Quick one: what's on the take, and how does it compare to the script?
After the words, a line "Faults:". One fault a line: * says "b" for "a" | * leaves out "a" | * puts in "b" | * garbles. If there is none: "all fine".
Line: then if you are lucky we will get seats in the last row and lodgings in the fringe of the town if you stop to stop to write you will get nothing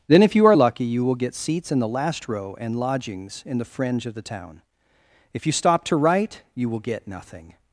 then if you are lucky you will get seats in the last row and lodgings in the fringe of the town if you stop to write you will get nothing
Faults:
* says "you" for "we"
* leaves out "stop to"